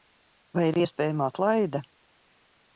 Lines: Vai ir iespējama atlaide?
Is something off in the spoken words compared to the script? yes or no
no